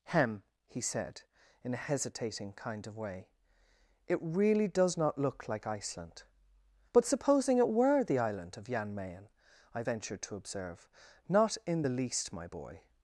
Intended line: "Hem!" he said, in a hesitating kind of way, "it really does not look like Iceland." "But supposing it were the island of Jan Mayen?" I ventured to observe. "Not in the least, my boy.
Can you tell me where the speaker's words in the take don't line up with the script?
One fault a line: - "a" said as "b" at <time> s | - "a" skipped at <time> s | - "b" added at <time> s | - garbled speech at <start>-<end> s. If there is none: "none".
none